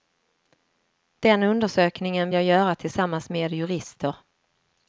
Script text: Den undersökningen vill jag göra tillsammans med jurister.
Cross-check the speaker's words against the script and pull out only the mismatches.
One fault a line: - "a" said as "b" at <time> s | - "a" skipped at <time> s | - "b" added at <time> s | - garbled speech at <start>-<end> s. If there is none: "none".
- "vill" skipped at 2.3 s